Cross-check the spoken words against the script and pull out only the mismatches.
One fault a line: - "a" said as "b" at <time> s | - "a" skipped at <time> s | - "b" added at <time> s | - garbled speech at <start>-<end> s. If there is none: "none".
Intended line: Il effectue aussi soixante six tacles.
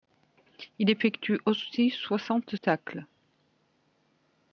- "six" skipped at 2.5 s